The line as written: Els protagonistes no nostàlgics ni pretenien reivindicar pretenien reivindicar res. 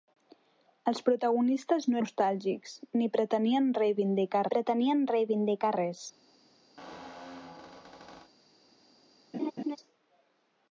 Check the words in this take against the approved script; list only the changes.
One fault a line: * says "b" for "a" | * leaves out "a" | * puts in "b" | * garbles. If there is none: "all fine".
all fine